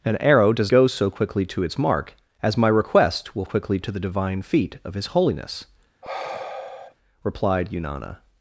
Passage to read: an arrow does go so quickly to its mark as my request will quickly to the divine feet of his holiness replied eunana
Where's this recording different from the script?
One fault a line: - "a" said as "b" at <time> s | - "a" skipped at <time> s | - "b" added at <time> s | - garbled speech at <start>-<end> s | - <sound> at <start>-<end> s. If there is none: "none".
- sigh at 6.0-6.9 s